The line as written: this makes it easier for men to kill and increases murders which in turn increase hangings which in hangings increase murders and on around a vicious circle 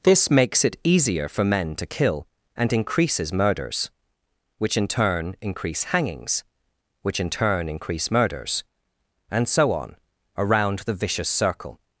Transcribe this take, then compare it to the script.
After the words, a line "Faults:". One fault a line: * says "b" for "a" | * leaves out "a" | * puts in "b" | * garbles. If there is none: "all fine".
this makes it easier for men to kill and increases murders which in turn increase hangings which in turn increase murders and so on around the vicious circle
Faults:
* says "turn" for "hangings"
* puts in "so"
* says "the" for "a"